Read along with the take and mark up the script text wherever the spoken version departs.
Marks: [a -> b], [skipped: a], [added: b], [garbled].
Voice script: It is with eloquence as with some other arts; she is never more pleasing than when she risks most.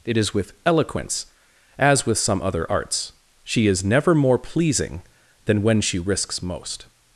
It is with eloquence as with some other arts; she is never more pleasing than when she risks most.